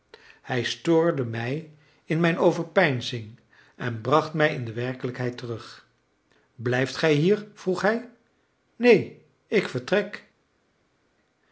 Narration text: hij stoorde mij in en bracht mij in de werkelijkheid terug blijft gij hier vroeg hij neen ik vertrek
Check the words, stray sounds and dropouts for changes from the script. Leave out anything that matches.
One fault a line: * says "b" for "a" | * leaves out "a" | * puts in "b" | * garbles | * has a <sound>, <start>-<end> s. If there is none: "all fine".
* puts in "mijn overpeinzing"